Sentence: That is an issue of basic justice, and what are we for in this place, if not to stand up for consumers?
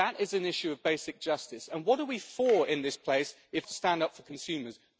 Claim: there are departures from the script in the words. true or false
true